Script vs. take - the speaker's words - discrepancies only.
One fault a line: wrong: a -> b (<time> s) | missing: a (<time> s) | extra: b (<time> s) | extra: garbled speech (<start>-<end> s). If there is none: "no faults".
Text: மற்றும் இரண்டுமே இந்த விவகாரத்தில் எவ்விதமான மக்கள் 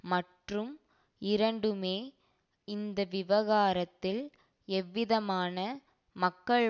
no faults